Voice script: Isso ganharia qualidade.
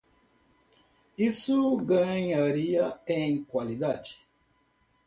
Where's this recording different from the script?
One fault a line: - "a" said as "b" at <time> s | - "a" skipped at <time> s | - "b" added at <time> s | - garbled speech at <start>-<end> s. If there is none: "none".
- "em" added at 3.0 s